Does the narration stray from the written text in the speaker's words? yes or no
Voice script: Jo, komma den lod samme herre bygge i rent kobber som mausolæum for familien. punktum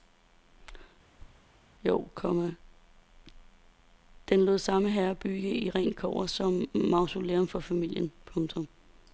no